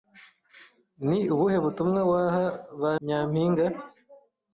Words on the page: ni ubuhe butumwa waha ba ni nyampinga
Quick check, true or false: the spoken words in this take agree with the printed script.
false